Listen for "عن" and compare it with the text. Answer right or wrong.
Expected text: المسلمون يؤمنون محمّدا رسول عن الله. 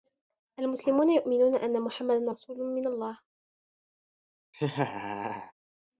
wrong